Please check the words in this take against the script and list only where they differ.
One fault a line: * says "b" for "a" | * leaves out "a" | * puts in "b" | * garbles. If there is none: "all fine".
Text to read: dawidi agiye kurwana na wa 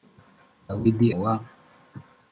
* leaves out "agiye kurwana na"